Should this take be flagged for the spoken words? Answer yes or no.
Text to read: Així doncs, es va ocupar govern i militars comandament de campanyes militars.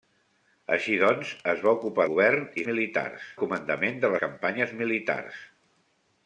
no